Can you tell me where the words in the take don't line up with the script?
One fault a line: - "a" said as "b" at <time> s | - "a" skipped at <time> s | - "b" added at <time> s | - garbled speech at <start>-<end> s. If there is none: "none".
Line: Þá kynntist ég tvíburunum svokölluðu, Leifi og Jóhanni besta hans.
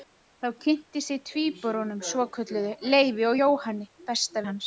none